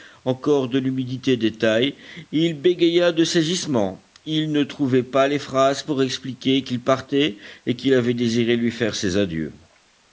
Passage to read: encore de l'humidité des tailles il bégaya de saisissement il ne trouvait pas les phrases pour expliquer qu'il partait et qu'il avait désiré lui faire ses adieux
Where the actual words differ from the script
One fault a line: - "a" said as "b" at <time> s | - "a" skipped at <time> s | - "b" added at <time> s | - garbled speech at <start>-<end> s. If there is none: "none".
none